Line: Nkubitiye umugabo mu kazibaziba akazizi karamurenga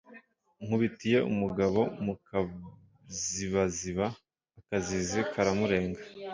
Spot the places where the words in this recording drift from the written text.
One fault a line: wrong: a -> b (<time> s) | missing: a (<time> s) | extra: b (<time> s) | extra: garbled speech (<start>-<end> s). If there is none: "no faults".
no faults